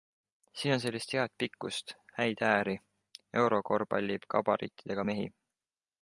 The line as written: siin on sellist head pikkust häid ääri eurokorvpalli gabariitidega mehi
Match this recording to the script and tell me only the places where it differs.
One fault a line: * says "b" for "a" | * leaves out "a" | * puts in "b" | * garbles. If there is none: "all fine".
all fine